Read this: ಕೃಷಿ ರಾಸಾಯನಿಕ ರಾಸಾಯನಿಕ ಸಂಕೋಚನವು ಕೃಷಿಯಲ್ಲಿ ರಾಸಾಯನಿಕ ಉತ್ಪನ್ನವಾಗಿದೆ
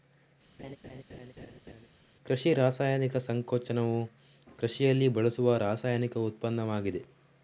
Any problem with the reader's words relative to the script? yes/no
yes